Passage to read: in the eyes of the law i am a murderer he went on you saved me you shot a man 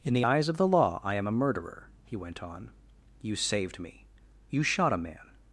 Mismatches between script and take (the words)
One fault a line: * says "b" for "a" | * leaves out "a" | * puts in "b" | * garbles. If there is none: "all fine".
all fine